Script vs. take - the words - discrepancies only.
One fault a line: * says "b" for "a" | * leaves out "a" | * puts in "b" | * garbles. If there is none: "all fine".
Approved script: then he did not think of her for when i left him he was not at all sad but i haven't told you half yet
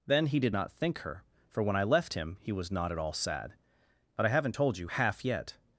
* leaves out "of"